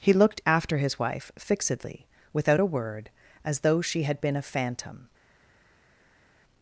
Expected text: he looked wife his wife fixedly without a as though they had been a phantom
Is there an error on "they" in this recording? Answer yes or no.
yes